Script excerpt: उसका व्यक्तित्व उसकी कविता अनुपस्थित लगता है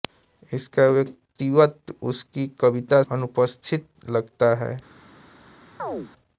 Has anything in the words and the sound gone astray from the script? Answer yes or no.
yes